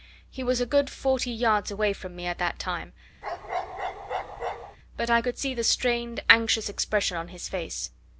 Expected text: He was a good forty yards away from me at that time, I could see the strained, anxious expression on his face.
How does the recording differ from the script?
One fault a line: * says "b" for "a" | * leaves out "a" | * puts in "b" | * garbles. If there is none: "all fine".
* puts in "but"